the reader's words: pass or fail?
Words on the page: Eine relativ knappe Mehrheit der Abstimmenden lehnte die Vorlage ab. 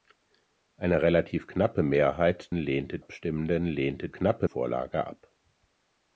fail